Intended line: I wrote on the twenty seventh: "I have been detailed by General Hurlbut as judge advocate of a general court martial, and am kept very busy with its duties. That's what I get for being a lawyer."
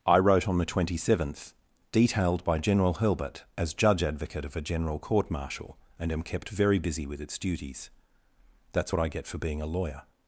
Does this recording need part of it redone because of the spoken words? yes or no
yes